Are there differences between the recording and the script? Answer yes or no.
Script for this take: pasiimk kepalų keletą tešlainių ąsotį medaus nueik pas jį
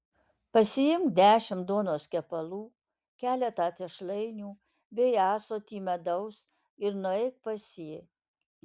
yes